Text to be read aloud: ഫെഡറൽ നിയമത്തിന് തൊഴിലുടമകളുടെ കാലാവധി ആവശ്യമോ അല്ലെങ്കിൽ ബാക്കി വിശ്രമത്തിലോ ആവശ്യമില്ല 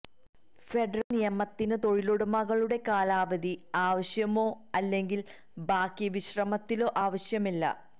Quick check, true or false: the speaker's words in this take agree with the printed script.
true